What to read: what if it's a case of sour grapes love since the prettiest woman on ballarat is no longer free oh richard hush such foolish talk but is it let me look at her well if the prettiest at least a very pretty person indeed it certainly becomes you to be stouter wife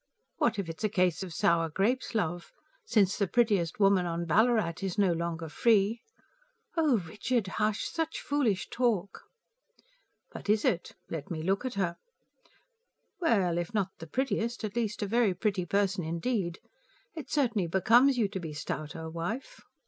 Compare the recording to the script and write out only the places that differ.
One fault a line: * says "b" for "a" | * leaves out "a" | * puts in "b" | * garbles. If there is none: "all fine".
* puts in "not"